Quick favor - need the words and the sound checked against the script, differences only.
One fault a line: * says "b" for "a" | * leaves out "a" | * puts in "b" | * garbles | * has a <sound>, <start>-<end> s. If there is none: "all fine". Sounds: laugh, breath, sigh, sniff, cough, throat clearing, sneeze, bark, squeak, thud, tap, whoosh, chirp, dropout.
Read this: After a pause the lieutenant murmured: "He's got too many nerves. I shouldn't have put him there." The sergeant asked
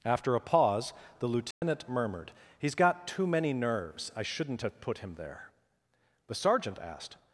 * has a dropout, 1.5-1.6 s